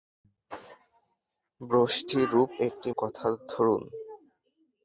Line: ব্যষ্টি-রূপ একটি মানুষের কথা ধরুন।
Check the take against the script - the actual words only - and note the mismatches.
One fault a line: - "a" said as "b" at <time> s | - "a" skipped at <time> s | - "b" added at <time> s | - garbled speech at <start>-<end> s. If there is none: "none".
- "মানুষের" skipped at 2.9 s